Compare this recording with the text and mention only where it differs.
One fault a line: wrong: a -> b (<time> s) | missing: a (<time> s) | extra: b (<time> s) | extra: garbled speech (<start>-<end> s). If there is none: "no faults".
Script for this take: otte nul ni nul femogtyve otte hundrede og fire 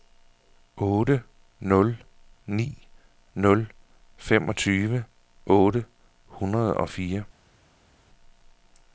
no faults